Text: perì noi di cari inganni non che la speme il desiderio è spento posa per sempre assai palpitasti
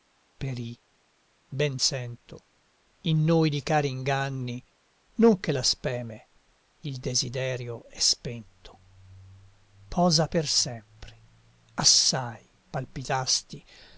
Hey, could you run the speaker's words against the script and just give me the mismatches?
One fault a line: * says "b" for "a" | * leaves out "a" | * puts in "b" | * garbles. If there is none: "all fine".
* puts in "ben sento in"